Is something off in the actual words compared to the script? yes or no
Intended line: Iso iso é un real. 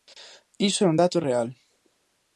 yes